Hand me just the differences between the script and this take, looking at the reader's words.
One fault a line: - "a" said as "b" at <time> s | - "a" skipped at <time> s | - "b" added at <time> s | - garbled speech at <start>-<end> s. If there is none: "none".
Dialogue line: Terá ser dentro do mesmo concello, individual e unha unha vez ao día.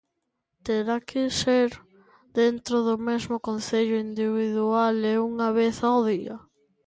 - "que" added at 1.0 s
- "unha" skipped at 5.5 s